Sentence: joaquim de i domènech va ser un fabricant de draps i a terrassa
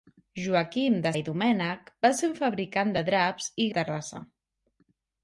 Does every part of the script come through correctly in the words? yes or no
yes